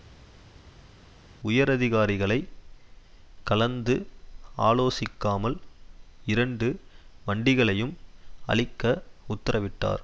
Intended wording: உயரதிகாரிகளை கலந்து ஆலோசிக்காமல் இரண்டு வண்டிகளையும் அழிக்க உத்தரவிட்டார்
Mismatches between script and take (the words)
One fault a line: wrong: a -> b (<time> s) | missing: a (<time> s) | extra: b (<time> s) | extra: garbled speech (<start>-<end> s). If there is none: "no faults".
no faults